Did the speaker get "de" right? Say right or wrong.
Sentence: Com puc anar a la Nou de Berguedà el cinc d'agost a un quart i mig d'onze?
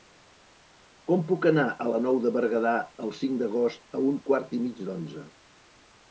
right